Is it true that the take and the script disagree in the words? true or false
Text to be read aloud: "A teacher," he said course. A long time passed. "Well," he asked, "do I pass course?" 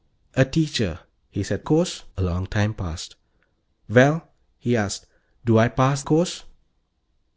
false